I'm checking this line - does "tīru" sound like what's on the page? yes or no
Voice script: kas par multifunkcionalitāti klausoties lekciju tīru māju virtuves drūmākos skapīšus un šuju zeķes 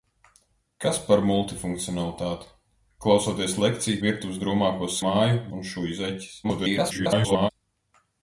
no